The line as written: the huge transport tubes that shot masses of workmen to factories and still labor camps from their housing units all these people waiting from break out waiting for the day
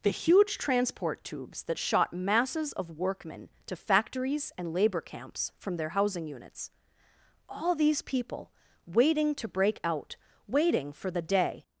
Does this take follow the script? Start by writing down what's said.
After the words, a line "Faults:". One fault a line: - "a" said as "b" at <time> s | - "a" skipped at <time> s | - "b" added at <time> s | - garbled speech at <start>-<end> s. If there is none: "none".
the huge transport tubes that shot masses of workmen to factories and labor camps from their housing units all these people waiting to break out waiting for the day
Faults:
- "still" skipped at 4.7 s
- "from" said as "to" at 9.3 s